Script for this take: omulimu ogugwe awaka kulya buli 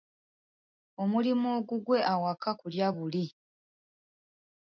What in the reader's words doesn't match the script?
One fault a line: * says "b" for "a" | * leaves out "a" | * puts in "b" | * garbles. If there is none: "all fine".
all fine